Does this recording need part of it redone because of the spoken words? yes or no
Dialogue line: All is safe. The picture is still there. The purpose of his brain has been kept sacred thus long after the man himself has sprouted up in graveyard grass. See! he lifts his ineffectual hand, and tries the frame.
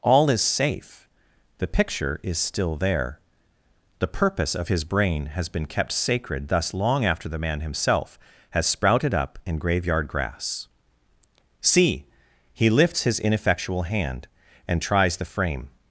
no